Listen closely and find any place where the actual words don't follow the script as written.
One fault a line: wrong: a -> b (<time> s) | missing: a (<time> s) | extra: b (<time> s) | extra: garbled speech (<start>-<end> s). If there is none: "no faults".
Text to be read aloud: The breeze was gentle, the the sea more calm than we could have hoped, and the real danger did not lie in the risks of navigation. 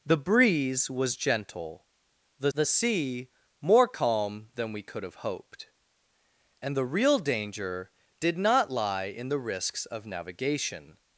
no faults